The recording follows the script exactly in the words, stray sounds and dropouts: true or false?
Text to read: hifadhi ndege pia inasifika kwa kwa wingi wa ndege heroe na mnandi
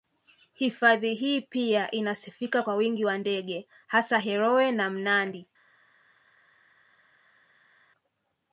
false